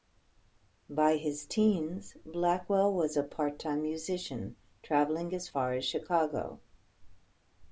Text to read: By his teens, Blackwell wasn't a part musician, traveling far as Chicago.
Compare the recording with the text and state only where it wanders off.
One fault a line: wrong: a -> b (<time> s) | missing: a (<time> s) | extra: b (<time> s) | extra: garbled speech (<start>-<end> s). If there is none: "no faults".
wrong: wasn't -> was (2.9 s)
extra: time (3.6 s)
extra: as (5.3 s)